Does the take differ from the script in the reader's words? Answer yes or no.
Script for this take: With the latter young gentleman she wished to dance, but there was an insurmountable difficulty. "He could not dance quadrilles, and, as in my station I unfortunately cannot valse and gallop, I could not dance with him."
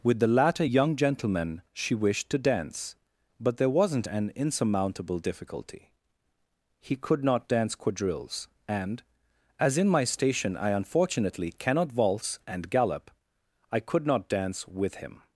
yes